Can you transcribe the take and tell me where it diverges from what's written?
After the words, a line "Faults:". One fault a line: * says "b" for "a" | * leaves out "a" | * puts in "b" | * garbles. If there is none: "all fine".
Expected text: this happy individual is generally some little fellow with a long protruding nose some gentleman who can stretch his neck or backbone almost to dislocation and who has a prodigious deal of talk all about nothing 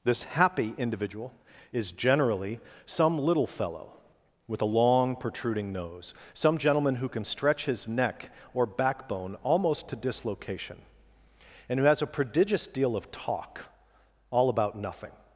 this happy individual is generally some little fellow with a long protruding nose some gentleman who can stretch his neck or backbone almost to dislocation and who has a prodigious deal of talk all about nothing
Faults:
all fine